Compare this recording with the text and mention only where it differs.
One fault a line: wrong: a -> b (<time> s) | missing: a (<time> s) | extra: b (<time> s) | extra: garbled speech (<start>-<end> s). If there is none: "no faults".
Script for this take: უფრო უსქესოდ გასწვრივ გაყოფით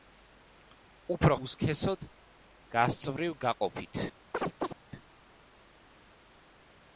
no faults